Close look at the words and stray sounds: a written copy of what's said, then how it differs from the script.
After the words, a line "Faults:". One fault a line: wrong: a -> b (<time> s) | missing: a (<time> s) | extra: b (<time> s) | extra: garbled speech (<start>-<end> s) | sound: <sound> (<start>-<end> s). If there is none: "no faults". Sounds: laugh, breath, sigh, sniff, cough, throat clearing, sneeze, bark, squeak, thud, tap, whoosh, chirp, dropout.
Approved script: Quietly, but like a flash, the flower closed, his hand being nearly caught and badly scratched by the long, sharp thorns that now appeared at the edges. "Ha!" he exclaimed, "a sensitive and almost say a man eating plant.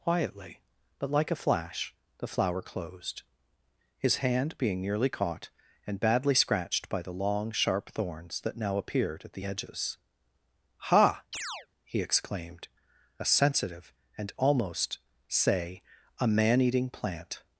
Quietly, but like a flash, the flower closed, his hand being nearly caught and badly scratched by the long, sharp thorns that now appeared at the edges. "Ha!" he exclaimed, "a sensitive and almost say a man eating plant.
Faults:
sound: chirp (11.3-11.7 s)